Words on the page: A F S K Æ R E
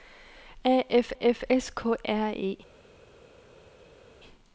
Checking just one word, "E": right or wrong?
right